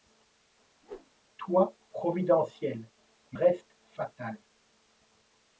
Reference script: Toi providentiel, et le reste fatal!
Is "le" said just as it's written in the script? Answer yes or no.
no